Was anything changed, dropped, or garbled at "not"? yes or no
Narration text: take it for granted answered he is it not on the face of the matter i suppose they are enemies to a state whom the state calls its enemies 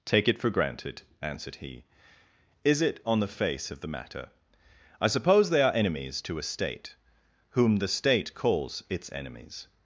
yes